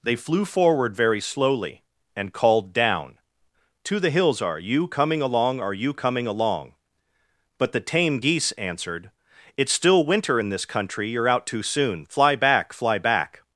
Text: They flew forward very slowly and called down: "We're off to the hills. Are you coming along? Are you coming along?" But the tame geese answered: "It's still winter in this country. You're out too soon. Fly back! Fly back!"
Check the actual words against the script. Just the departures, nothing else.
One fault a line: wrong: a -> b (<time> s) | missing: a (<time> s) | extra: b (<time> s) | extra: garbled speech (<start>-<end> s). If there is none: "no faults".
missing: We're off (3.2 s)